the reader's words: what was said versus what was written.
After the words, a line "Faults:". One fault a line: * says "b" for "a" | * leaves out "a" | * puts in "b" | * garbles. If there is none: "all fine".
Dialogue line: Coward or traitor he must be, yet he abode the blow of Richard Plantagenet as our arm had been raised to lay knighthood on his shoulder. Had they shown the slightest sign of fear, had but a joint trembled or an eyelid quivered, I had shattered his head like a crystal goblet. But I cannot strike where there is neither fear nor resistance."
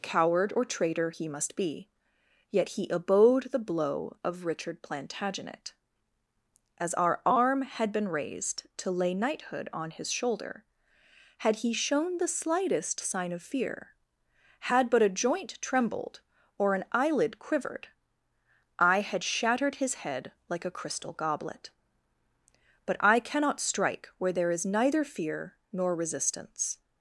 Coward or traitor he must be, yet he abode the blow of Richard Plantagenet as our arm had been raised to lay knighthood on his shoulder. Had he shown the slightest sign of fear, had but a joint trembled or an eyelid quivered, I had shattered his head like a crystal goblet. But I cannot strike where there is neither fear nor resistance."
Faults:
* says "he" for "they"